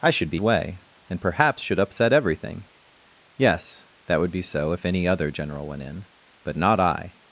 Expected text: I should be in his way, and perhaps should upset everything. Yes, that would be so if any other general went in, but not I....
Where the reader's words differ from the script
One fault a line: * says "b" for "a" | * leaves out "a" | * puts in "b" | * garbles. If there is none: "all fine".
* leaves out "in his"